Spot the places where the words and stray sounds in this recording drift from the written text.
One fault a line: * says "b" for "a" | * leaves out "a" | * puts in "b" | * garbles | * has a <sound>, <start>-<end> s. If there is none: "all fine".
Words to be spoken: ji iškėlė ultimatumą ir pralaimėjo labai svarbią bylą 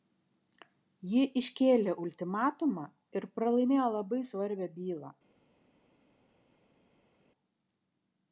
all fine